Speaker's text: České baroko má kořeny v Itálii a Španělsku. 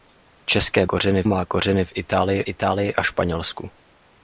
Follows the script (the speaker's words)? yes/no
no